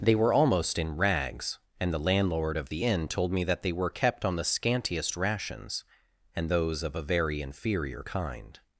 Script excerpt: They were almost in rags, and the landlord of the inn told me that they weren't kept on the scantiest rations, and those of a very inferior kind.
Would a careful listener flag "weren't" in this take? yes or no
yes